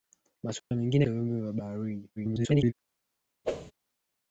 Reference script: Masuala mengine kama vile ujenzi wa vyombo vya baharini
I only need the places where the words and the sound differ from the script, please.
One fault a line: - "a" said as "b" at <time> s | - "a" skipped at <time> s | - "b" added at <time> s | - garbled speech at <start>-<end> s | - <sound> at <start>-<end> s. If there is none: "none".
- dropout at 0.6-0.7 s
- "kama vile ujenzi" skipped at 1.1 s
- garbled speech at 2.2-2.7 s
- whoosh at 3.4-3.7 s